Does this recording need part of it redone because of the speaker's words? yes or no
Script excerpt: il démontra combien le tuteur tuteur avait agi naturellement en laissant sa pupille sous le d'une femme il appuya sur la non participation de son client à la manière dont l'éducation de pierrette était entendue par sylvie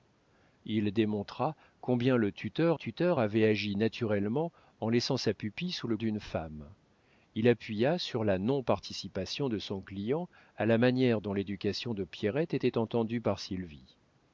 no